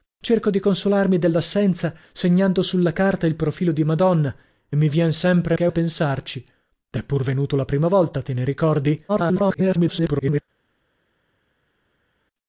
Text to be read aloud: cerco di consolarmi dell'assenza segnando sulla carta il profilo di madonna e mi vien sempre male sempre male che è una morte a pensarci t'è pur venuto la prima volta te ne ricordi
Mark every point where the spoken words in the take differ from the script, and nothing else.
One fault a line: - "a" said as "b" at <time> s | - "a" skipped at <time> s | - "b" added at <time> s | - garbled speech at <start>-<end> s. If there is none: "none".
- "male sempre male" skipped at 5.6 s
- "una morte" skipped at 5.7 s
- garbled speech at 9.1-10.4 s